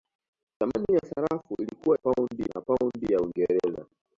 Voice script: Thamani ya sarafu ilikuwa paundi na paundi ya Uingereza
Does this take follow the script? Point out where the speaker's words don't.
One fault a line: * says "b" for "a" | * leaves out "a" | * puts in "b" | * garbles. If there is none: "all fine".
all fine